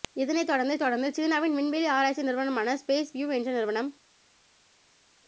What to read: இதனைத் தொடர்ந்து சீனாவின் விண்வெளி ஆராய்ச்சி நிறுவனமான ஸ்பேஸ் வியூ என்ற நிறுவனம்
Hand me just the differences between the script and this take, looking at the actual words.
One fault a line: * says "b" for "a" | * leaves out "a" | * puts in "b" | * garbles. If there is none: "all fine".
* puts in "தொடர்ந்து"